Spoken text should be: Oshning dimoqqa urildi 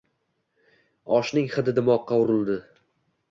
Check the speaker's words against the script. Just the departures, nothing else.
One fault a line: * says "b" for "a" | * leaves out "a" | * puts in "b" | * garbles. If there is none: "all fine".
* puts in "hidi"